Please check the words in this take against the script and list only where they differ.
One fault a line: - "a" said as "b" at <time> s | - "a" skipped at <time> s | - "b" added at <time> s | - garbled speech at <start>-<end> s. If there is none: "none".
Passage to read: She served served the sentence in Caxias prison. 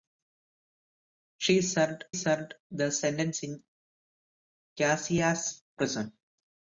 none